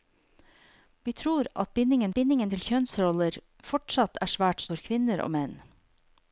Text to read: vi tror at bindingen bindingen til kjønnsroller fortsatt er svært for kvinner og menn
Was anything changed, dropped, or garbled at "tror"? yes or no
no